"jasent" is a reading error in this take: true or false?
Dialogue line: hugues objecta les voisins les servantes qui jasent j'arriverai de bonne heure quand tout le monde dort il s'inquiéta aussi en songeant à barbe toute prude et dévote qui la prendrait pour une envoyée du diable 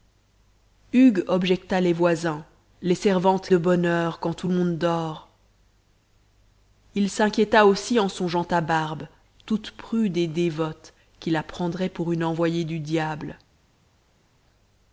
true